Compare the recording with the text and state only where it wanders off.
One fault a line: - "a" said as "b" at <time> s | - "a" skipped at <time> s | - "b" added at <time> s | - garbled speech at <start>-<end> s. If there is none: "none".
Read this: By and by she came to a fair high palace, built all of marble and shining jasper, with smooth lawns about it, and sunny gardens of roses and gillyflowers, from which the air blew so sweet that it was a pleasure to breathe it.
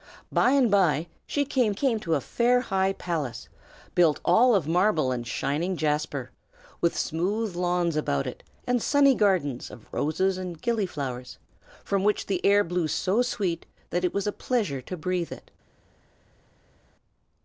- "came" added at 1.7 s